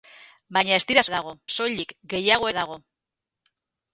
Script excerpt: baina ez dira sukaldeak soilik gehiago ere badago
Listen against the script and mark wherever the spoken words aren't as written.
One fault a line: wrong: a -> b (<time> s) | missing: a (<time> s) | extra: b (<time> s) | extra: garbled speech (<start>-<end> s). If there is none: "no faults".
wrong: sukaldeak -> badago (1.1 s)
missing: ere (2.5 s)